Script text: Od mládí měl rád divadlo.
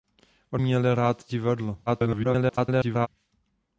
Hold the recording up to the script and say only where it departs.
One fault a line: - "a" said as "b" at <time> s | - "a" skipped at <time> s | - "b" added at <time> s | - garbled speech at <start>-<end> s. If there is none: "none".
- "mládí" skipped at 0.6 s
- garbled speech at 1.9-3.1 s